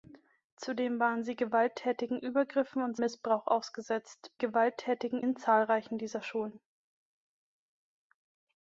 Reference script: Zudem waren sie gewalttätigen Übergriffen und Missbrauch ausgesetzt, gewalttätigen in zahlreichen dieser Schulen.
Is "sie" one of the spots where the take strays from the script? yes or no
no